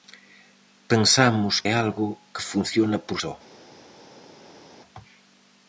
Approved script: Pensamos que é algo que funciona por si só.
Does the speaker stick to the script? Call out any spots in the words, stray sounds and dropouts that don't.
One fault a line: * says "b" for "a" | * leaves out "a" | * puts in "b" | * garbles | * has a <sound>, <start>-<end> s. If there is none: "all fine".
* leaves out "que"
* leaves out "si"